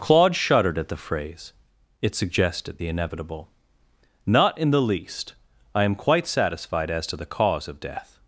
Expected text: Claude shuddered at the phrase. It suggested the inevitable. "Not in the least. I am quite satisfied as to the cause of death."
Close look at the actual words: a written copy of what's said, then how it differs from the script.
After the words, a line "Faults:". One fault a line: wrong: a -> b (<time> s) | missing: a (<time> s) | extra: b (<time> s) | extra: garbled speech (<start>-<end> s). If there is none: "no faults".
Claude shuddered at the phrase. It suggested the inevitable. "Not in the least. I am quite satisfied as to the cause of death."
Faults:
no faults